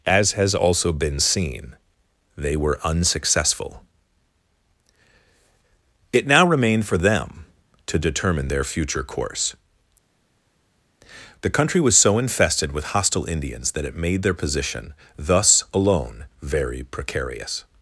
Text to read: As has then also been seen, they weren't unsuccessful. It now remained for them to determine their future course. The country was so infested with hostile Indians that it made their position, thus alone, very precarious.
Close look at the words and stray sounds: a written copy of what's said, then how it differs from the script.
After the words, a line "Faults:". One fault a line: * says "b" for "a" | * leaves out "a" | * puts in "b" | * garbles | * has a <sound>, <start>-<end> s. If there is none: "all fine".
As has also been seen, they were unsuccessful. It now remained for them to determine their future course. The country was so infested with hostile Indians that it made their position, thus alone, very precarious.
Faults:
* leaves out "then"
* says "were" for "weren't"